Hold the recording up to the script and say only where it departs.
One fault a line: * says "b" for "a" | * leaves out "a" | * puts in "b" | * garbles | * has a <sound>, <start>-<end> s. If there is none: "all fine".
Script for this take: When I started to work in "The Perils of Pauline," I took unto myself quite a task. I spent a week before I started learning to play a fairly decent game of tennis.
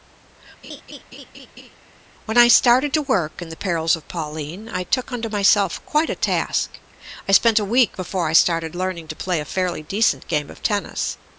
* has a laugh, 0.6-1.8 s